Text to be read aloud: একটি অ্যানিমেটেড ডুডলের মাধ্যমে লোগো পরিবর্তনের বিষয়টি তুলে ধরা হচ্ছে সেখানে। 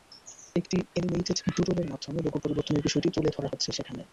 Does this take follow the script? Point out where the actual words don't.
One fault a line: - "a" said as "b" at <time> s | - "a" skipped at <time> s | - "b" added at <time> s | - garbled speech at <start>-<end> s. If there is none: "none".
none